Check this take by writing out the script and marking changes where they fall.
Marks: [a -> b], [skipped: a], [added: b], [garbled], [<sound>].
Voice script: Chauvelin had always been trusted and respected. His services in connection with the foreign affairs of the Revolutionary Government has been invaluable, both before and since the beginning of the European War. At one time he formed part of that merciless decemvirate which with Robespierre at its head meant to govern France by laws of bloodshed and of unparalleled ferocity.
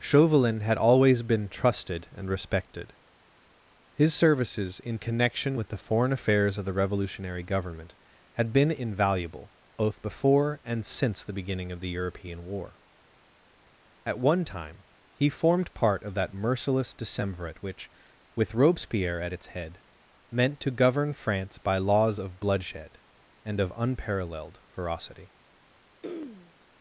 Chauvelin had always been trusted and respected. His services in connection with the foreign affairs of the Revolutionary Government [has -> had] been invaluable, both before and since the beginning of the European War. At one time he formed part of that merciless decemvirate which with Robespierre at its head meant to govern France by laws of bloodshed and of unparalleled ferocity. [throat clearing]